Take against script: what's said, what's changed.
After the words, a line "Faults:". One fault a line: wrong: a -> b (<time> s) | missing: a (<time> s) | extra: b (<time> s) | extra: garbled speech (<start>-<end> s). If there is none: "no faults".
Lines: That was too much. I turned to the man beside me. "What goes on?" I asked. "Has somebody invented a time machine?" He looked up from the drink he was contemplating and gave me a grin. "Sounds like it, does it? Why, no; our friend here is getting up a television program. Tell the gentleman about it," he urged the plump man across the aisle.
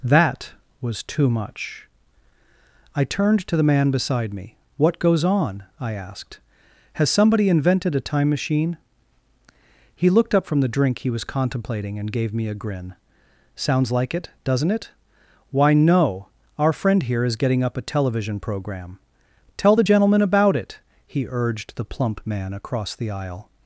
That was too much. I turned to the man beside me. "What goes on?" I asked. "Has somebody invented a time machine?" He looked up from the drink he was contemplating and gave me a grin. "Sounds like it, doesn't it? Why, no; our friend here is getting up a television program. Tell the gentleman about it," he urged the plump man across the aisle.
Faults:
wrong: does -> doesn't (14.4 s)